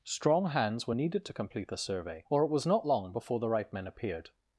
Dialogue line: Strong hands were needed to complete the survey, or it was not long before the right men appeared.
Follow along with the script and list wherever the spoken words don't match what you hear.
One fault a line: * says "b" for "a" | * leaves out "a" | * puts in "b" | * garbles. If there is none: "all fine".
all fine